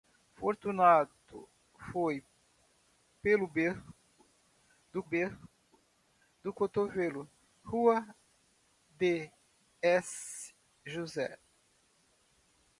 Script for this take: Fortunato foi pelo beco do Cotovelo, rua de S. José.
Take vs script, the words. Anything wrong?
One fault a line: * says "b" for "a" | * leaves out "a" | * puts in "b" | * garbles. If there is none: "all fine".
* puts in "beco do"